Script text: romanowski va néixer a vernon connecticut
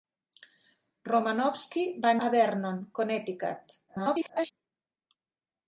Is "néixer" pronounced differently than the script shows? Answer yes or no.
yes